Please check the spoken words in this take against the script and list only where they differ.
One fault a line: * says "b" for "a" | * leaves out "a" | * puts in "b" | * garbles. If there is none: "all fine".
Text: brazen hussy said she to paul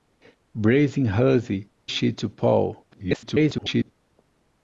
* leaves out "said"
* garbles